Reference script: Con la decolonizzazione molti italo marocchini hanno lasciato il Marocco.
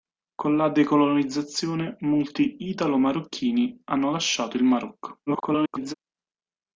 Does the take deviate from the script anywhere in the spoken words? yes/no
yes